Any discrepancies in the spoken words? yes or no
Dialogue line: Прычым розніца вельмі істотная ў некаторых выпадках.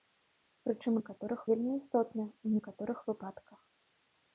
yes